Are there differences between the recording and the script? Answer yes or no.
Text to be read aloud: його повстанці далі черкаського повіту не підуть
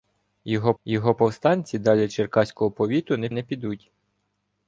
yes